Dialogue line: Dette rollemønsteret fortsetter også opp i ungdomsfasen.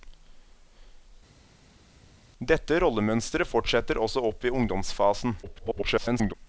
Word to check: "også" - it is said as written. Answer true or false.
true